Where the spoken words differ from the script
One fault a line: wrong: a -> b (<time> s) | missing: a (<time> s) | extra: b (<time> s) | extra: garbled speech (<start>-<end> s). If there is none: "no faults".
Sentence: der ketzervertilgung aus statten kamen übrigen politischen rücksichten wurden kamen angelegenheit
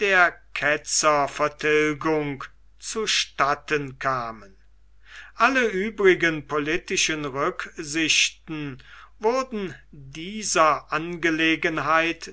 wrong: aus -> zu (2.8 s)
extra: alle (5.3 s)
wrong: kamen -> dieser (9.9 s)